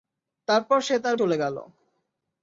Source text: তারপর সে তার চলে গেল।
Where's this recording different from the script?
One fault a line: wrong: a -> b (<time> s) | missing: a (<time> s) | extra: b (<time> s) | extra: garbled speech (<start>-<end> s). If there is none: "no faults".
no faults